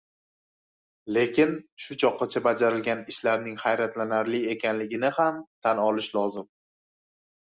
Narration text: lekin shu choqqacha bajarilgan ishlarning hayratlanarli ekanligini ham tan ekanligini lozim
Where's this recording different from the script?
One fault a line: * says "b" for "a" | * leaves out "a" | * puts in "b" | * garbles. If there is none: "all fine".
* says "olish" for "ekanligini"